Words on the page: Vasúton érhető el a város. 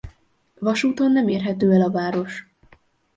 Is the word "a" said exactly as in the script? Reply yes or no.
yes